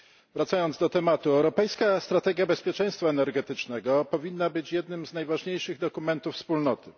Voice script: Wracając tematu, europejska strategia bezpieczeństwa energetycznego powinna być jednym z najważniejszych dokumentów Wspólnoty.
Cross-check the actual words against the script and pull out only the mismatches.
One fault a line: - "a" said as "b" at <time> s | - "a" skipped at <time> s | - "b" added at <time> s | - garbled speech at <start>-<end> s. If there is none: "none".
- "do" added at 0.8 s